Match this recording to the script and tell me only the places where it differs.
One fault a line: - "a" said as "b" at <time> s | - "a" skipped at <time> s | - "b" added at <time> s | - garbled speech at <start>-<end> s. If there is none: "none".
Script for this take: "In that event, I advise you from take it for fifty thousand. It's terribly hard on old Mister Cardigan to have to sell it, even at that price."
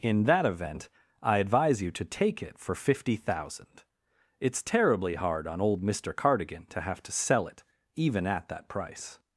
- "from" said as "to" at 1.9 s